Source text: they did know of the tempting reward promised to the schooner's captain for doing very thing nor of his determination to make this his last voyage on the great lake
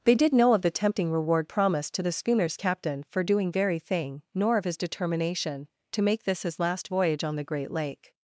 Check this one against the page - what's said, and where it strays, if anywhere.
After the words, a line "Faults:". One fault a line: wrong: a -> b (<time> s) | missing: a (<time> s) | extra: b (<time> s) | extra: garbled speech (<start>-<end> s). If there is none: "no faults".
they did know of the tempting reward promised to the schooner's captain for doing very thing nor of his determination to make this his last voyage on the great lake
Faults:
no faults